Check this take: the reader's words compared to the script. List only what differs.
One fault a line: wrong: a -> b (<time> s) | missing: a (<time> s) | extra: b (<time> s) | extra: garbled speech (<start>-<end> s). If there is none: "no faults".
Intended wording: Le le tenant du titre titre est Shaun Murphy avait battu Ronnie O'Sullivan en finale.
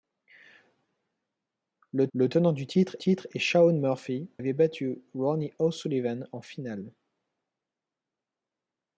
no faults